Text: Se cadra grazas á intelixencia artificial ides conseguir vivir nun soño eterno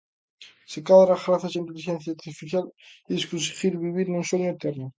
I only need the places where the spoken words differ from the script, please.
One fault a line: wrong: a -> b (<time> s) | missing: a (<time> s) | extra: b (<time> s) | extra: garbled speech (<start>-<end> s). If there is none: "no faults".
no faults